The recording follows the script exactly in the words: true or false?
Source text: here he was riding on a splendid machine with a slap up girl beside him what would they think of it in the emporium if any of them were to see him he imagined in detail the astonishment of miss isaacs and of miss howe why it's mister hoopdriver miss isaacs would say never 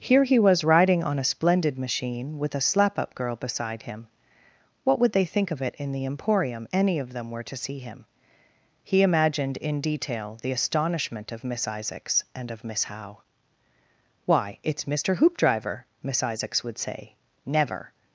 false